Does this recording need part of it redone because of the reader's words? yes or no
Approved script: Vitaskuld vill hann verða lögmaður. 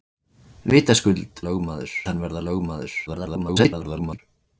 yes